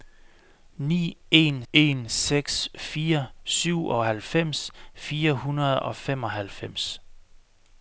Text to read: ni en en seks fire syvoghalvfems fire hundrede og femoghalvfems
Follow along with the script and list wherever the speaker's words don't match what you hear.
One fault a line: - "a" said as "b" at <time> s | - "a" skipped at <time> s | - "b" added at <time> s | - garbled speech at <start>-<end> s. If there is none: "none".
none